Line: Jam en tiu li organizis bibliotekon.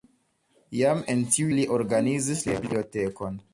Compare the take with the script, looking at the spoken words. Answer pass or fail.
pass